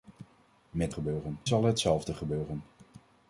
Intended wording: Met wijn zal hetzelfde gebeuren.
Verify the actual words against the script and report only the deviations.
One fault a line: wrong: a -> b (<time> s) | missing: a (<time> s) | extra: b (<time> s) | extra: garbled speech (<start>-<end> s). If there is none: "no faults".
wrong: wijn -> gebeuren (0.9 s)